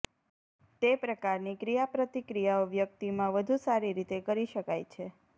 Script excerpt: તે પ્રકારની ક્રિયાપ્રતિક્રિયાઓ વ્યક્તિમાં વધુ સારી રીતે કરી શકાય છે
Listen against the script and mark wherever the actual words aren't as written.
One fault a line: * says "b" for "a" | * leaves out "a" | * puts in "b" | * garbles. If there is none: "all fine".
all fine